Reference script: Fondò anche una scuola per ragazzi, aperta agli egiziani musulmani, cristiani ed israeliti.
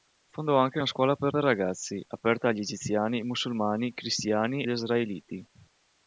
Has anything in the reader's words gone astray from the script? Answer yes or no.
yes